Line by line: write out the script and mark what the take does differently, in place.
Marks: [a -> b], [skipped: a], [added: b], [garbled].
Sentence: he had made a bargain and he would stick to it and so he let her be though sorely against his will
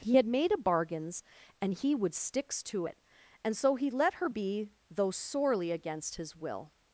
he had made a [bargain -> bargains] and he would [stick -> sticks] to it and so he let her be though sorely against his will